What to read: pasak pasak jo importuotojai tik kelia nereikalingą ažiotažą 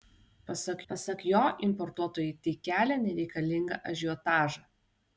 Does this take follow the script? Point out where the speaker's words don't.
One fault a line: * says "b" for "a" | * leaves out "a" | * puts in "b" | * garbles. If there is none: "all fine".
all fine